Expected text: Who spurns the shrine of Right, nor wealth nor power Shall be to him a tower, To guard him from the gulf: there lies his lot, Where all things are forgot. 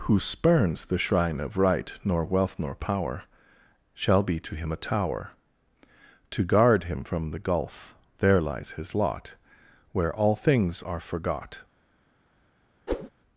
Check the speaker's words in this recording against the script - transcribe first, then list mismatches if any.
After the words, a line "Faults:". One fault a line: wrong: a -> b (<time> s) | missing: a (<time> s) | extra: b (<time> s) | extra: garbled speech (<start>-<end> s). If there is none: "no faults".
Who spurns the shrine of Right, nor wealth nor power Shall be to him a tower, To guard him from the gulf: there lies his lot, Where all things are forgot.
Faults:
no faults